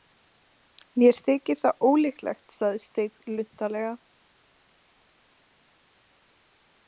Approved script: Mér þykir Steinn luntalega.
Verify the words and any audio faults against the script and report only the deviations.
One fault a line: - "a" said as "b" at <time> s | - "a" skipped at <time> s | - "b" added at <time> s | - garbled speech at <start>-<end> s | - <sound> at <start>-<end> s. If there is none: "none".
- "það ólíklegt sagði" added at 1.6 s